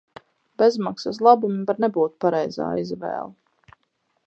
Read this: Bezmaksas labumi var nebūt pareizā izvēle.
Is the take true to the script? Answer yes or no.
yes